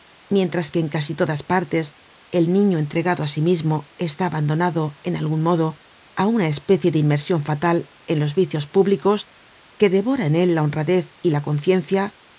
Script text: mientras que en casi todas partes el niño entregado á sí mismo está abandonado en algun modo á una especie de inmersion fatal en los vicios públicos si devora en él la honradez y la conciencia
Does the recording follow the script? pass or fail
fail